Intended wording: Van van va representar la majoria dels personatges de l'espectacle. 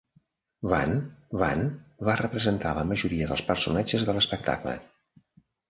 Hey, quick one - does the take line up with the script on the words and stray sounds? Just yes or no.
yes